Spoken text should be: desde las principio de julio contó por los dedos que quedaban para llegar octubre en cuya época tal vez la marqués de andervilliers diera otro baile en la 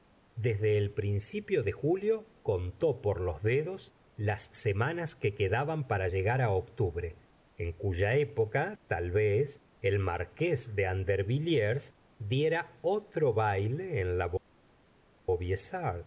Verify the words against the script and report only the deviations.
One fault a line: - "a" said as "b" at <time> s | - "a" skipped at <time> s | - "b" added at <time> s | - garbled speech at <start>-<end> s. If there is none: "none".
- "las" said as "el" at 0.8 s
- "las semanas" added at 4.2 s
- "la" said as "el" at 9.8 s